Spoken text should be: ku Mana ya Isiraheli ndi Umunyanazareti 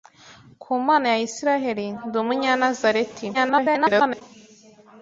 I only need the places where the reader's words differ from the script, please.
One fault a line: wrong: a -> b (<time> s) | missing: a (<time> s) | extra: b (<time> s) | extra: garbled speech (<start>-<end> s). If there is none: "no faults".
extra: garbled speech (3.3-4.2 s)